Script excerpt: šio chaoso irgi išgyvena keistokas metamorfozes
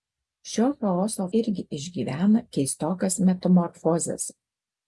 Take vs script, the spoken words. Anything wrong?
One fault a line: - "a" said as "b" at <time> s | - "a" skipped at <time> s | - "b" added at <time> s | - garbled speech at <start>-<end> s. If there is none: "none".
none